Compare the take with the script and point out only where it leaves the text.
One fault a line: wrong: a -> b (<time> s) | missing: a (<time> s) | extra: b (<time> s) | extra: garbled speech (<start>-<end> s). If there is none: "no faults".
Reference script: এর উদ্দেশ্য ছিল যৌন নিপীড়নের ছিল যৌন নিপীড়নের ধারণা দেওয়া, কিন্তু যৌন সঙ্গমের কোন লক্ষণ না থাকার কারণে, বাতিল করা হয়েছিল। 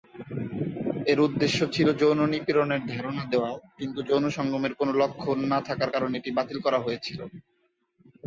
missing: ছিল যৌন নিপীড়নের (2.8 s)
extra: এটি (6.2 s)